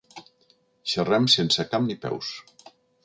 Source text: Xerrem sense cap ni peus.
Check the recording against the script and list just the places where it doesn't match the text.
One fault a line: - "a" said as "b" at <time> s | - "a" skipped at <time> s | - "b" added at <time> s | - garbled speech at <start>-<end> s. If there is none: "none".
none